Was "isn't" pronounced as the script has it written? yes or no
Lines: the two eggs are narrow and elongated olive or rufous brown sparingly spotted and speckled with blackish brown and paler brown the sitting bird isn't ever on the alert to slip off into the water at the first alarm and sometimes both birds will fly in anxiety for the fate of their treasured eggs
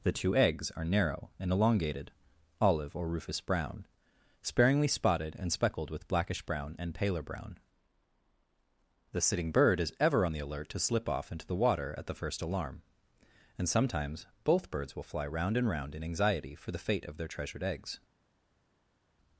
no